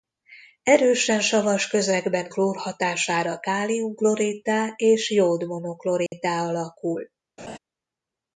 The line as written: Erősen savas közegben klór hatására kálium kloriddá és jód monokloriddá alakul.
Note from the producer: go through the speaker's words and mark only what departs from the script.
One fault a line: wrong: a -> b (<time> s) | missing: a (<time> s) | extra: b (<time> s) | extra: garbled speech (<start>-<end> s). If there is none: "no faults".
no faults